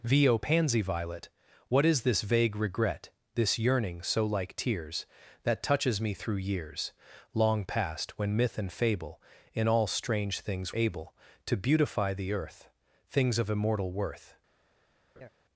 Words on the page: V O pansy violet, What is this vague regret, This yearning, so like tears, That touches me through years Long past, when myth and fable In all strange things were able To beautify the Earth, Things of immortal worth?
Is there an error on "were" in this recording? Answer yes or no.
yes